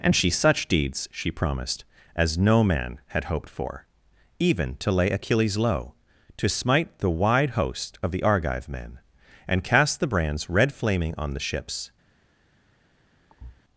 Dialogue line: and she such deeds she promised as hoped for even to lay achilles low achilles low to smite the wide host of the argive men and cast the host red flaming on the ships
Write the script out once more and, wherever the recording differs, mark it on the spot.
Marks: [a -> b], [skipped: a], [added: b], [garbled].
and she such deeds she promised as [added: no man had] hoped for even to lay achilles low [skipped: achilles low] to smite the wide host of the argive men and cast the [host -> brands] red flaming on the ships